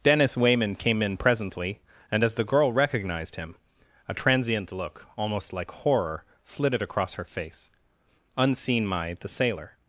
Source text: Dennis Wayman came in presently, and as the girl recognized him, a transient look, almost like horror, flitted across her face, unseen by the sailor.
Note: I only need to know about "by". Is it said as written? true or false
false